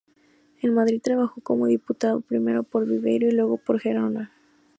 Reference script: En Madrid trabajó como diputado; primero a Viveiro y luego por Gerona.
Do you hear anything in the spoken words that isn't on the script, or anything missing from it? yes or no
yes